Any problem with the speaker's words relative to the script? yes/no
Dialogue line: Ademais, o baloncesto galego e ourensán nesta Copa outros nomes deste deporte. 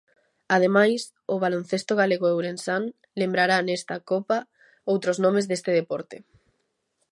yes